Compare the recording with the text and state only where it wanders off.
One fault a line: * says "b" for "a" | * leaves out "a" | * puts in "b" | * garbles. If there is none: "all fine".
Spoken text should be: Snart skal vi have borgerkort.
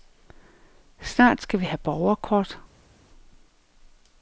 all fine